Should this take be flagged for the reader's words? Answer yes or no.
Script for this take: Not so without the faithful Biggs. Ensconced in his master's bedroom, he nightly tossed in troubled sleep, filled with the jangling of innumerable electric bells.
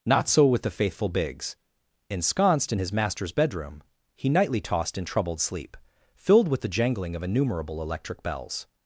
yes